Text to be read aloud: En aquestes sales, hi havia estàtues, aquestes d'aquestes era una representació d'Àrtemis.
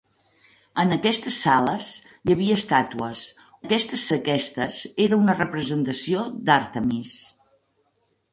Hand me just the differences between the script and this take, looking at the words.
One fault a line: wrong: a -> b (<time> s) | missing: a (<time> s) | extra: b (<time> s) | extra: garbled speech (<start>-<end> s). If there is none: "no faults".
no faults